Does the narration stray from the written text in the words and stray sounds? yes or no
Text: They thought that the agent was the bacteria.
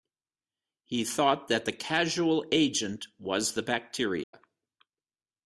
yes